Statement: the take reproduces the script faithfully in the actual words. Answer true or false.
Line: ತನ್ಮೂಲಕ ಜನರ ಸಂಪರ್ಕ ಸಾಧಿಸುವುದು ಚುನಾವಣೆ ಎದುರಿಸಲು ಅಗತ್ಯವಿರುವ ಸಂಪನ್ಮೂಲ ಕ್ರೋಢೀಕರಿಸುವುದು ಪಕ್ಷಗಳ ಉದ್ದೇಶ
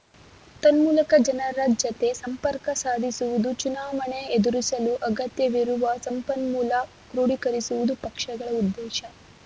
false